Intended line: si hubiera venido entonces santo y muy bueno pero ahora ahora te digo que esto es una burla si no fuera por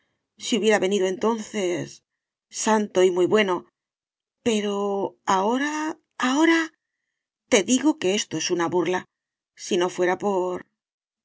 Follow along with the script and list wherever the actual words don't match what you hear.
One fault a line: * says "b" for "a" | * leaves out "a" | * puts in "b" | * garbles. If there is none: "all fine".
all fine